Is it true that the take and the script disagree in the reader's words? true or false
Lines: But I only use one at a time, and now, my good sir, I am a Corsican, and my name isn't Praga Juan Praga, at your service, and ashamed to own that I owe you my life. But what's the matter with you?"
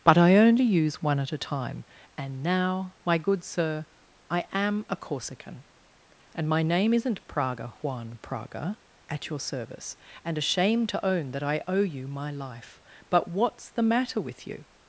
false